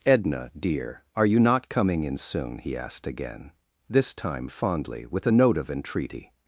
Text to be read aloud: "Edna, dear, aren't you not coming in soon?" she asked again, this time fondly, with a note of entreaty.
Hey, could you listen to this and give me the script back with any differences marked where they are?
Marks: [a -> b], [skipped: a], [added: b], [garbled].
"Edna, dear, [aren't -> are] you not coming in soon?" [she -> he] asked again, this time fondly, with a note of entreaty.